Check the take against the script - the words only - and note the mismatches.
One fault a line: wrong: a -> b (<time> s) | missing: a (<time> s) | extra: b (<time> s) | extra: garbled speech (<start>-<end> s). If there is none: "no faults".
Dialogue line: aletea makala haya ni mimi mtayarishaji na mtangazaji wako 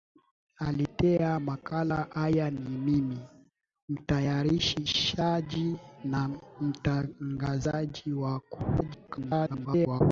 extra: garbled speech (8.8-10.0 s)